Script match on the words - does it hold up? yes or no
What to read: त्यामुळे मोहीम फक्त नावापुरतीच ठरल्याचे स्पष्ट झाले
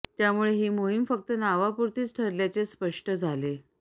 no